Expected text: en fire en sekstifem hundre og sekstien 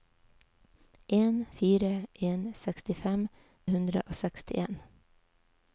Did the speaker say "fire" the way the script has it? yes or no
yes